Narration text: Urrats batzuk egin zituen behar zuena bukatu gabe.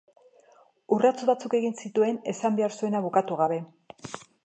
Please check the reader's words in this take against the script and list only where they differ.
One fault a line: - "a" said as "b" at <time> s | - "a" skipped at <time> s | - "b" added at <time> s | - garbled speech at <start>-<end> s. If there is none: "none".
- "esan" added at 2.4 s